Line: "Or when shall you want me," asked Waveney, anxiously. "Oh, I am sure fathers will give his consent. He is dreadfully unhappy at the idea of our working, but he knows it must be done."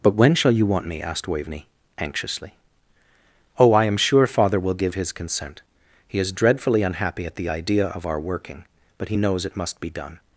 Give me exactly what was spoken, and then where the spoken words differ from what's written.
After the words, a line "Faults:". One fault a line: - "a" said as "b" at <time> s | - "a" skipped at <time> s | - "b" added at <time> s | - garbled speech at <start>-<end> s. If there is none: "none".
"But when shall you want me," asked Waveney, anxiously. "Oh, I am sure father will give his consent. He is dreadfully unhappy at the idea of our working, but he knows it must be done."
Faults:
- "Or" said as "But" at 0.0 s
- "fathers" said as "father" at 4.2 s